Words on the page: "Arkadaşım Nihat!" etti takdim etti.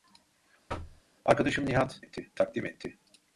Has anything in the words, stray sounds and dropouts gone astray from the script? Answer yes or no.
yes